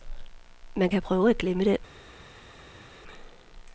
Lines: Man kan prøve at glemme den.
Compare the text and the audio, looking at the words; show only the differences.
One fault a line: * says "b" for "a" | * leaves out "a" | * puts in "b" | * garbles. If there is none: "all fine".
all fine